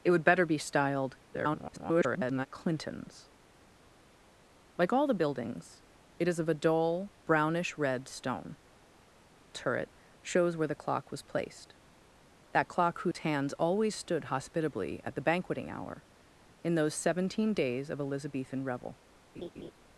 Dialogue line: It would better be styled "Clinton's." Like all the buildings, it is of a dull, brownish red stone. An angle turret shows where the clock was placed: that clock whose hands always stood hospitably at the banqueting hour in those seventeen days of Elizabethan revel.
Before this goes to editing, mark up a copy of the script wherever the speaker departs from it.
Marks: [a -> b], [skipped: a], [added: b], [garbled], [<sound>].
It would better be styled [garbled] "Clinton's." Like all the buildings, it is of a dull, brownish red stone. [skipped: An angle] turret shows where the clock was placed: that clock whose [dropout] hands always stood hospitably at the banqueting hour in those seventeen days of Elizabethan revel. [laugh]